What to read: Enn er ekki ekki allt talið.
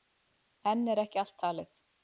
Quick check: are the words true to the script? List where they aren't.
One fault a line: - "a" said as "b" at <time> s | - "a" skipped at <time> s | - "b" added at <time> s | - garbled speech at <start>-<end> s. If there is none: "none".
- "ekki" skipped at 1.2 s